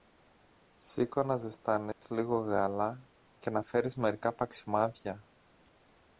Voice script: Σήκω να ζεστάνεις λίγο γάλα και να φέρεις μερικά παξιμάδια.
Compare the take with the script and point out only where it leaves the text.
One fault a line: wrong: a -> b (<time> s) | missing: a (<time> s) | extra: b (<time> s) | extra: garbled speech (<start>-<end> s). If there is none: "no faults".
no faults